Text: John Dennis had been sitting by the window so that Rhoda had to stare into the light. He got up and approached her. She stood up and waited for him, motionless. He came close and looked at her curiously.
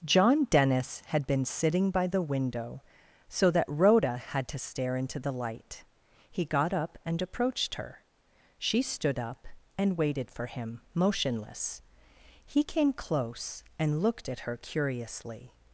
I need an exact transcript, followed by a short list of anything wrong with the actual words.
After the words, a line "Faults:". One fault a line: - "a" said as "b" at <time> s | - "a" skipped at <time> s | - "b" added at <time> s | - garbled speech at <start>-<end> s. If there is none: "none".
John Dennis had been sitting by the window so that Rhoda had to stare into the light. He got up and approached her. She stood up and waited for him, motionless. He came close and looked at her curiously.
Faults:
none